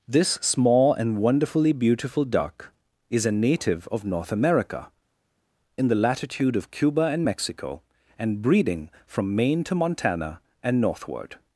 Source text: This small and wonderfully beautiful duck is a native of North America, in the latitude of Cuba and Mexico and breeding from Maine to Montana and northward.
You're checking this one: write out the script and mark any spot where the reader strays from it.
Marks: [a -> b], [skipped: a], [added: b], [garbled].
This small and wonderfully beautiful duck is a native of North America, in the latitude of Cuba and Mexico and breeding from Maine to Montana and northward.